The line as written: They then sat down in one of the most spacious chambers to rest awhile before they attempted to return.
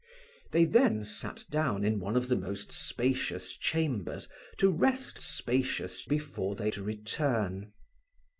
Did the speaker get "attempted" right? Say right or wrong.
wrong